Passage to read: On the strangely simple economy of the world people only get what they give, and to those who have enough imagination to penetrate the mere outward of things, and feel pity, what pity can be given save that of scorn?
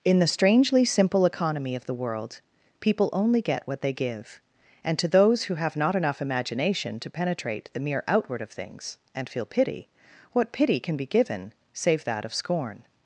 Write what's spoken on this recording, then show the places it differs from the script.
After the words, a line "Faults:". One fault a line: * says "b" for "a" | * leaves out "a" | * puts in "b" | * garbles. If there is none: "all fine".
In the strangely simple economy of the world people only get what they give, and to those who have not enough imagination to penetrate the mere outward of things, and feel pity, what pity can be given save that of scorn?
Faults:
* says "In" for "On"
* puts in "not"